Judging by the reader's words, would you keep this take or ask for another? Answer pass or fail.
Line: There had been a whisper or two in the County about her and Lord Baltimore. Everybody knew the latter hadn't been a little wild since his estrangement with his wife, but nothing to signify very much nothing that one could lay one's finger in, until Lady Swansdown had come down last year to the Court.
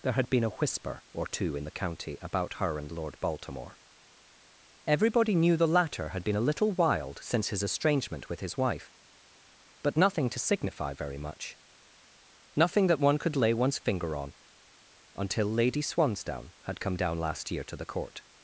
fail